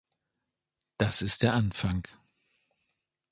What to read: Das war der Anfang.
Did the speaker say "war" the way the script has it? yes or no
no